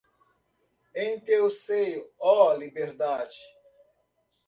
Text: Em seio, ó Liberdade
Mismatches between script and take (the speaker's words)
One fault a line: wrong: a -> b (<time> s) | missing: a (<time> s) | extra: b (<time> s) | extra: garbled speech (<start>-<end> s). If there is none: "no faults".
extra: teu (1.2 s)